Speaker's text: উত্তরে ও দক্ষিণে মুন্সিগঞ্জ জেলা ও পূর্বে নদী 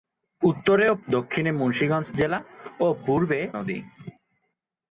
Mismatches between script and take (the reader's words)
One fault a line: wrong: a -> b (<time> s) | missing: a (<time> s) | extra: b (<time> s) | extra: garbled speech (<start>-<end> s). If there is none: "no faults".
no faults